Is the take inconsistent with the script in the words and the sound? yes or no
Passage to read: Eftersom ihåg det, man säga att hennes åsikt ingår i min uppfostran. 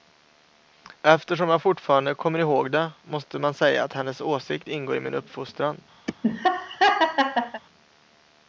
yes